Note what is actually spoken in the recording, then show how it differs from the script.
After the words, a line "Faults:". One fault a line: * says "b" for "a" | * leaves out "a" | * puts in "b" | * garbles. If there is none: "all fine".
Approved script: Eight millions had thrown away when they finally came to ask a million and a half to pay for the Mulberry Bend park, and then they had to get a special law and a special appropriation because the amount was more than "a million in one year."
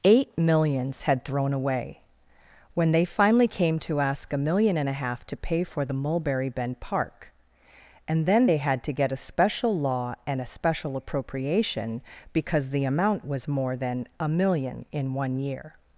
Eight millions had thrown away when they finally came to ask a million and a half to pay for the Mulberry Bend park, and then they had to get a special law and a special appropriation because the amount was more than "a million in one year."
Faults:
all fine